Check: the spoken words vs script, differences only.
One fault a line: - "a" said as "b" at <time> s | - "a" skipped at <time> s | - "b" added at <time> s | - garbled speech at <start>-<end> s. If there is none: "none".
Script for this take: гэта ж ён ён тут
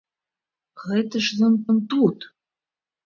none